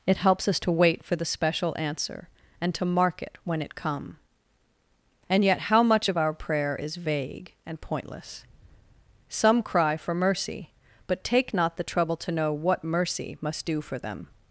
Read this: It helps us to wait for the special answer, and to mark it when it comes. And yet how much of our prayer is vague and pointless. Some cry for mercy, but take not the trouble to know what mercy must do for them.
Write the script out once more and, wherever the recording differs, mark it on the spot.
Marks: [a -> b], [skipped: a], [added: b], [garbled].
It helps us to wait for the special answer, and to mark it when it [comes. -> come] And yet how much of our prayer is vague and pointless. Some cry for mercy, but take not the trouble to know what mercy must do for them.